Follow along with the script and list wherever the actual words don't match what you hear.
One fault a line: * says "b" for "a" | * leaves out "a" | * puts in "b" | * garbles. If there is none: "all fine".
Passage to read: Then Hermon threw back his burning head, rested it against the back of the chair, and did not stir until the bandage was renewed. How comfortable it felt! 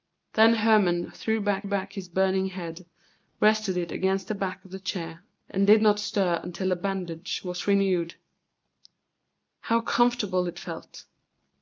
* puts in "back"